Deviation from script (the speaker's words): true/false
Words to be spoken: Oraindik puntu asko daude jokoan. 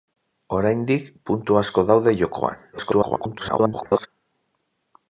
true